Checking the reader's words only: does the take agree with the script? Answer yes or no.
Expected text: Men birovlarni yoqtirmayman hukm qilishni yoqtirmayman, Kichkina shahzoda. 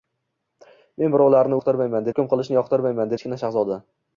yes